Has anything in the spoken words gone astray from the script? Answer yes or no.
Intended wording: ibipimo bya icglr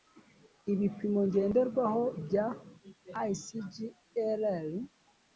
yes